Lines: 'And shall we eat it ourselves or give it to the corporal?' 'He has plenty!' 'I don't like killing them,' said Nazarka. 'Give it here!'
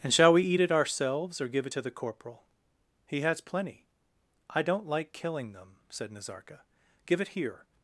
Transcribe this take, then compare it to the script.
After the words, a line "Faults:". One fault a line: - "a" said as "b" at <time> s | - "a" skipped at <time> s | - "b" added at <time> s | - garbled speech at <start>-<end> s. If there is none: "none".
'And shall we eat it ourselves or give it to the corporal?' 'He has plenty!' 'I don't like killing them,' said Nazarka. 'Give it here!'
Faults:
none